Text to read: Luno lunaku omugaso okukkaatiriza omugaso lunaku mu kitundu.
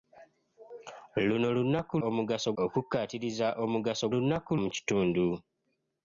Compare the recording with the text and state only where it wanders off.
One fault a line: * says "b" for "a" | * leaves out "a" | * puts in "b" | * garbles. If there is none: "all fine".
all fine